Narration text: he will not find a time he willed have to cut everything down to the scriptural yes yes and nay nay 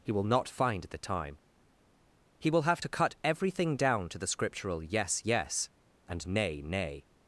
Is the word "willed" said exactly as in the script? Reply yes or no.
no